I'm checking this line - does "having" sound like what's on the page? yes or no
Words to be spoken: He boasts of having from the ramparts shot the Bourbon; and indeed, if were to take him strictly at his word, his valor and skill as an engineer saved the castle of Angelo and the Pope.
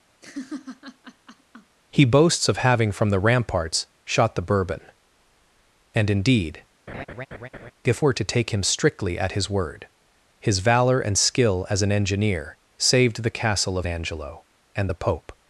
yes